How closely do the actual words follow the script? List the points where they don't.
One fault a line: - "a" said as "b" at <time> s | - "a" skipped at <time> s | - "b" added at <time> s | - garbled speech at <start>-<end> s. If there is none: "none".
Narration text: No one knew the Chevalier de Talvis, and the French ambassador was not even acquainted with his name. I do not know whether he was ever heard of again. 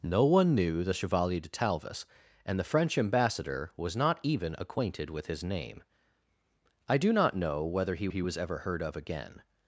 - "he" added at 8.1 s